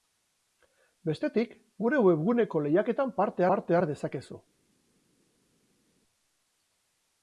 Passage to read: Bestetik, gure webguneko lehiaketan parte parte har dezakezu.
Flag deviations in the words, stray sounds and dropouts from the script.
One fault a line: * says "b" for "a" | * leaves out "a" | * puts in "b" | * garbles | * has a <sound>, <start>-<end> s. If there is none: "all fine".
all fine